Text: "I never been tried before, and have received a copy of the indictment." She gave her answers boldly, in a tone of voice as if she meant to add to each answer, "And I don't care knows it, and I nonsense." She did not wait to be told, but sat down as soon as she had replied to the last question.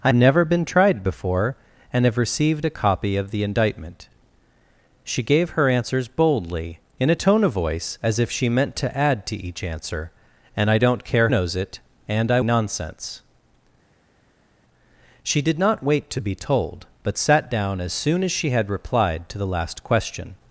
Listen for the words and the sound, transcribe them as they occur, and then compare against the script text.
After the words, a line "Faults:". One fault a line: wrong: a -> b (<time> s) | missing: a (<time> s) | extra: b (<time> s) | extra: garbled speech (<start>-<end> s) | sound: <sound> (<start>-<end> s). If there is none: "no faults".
"I never been tried before, and have received a copy of the indictment." She gave her answers boldly, in a tone of voice as if she meant to add to each answer, "And I don't care knows it, and I nonsense." She did not wait to be told, but sat down as soon as she had replied to the last question.
Faults:
no faults